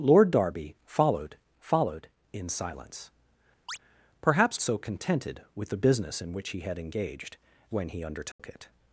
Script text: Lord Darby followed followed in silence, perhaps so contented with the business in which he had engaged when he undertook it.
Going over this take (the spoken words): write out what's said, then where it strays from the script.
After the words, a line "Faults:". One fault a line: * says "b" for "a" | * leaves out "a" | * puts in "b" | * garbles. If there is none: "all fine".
Lord Darby followed followed in silence, perhaps so contented with the business in which he had engaged when he undertook it.
Faults:
all fine